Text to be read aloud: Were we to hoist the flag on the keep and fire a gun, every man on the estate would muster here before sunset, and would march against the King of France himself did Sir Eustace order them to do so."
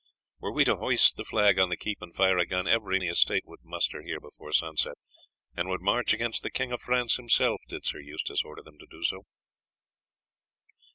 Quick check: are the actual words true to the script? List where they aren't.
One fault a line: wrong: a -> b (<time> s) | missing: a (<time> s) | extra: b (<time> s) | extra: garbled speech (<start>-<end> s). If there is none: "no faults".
missing: man on (3.0 s)